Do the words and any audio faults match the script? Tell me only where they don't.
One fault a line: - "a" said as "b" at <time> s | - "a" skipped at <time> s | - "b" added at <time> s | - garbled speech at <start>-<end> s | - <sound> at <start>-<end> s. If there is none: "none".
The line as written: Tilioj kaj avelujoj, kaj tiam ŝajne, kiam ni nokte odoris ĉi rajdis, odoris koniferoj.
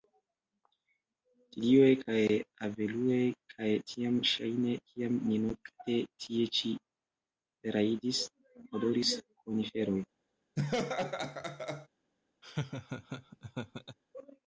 - "odoris" said as "tie" at 6.3 s
- laugh at 10.6-11.9 s
- laugh at 12.4-14.0 s